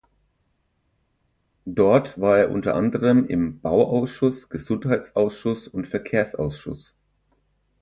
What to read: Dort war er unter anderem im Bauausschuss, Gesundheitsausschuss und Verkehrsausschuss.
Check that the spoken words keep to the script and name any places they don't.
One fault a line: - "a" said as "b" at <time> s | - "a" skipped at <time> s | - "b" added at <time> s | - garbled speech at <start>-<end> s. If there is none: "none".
none